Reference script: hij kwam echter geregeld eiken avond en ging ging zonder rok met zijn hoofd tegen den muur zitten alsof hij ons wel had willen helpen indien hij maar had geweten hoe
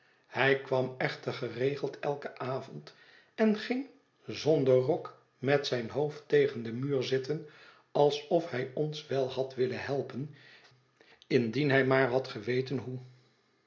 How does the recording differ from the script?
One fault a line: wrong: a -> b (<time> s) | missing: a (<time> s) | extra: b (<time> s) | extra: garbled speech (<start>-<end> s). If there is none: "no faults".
missing: ging (3.8 s)